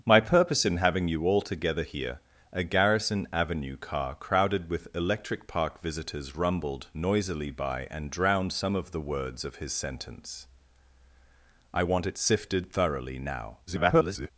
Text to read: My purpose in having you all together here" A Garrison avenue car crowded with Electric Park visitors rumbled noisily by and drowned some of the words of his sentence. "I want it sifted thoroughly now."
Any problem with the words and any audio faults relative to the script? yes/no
yes